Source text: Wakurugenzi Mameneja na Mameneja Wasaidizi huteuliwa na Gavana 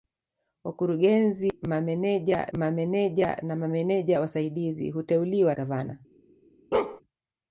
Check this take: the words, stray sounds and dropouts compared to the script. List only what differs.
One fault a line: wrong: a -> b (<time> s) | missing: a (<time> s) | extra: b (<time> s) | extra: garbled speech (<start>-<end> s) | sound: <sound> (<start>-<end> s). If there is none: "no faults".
extra: Mameneja (2.6 s)
missing: na (5.5 s)
sound: bark (6.7-7.0 s)